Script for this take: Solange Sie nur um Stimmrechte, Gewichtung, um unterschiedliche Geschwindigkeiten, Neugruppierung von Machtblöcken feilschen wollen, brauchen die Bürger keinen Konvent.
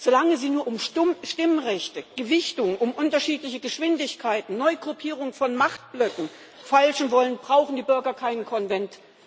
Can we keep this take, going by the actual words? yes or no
yes